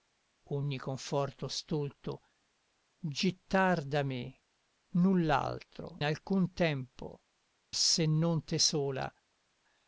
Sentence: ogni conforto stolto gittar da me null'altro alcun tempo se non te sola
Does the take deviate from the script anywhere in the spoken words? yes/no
no